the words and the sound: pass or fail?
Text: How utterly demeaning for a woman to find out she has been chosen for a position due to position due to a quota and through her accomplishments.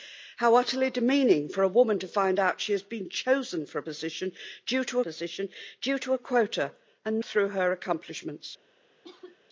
fail